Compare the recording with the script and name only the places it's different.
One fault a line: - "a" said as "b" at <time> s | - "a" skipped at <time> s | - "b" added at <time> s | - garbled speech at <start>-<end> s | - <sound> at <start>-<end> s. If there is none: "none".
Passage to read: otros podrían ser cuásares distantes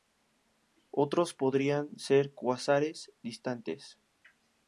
none